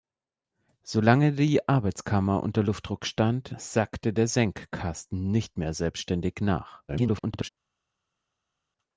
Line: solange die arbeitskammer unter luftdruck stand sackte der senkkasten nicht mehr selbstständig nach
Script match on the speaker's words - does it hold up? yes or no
no